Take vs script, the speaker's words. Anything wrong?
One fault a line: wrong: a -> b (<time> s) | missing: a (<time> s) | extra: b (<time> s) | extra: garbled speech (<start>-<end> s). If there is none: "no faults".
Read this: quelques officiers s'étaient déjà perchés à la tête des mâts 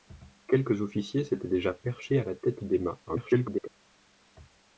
extra: garbled speech (3.1-3.7 s)